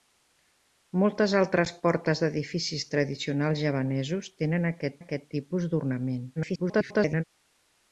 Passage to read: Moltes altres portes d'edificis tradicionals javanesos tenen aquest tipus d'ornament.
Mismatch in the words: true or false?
true